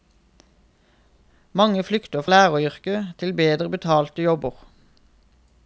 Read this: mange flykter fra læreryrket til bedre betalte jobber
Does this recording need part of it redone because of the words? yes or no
yes